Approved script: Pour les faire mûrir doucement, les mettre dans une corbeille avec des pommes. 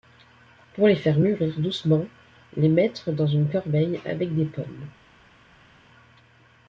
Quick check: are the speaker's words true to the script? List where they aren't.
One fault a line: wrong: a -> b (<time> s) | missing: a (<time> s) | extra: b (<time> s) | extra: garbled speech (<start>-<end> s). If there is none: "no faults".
no faults